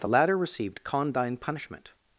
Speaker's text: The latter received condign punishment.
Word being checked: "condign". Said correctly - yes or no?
yes